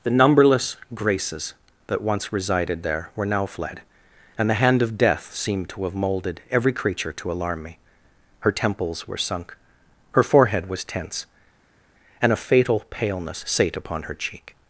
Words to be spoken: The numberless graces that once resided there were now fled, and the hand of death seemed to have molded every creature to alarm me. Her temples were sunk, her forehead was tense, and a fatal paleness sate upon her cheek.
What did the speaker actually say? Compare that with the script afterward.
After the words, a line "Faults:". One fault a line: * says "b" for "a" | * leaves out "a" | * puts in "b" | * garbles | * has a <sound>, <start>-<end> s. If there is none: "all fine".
The numberless graces that once resided there were now fled, and the hand of death seemed to have molded every creature to alarm me. Her temples were sunk, her forehead was tense, and a fatal paleness sate upon her cheek.
Faults:
all fine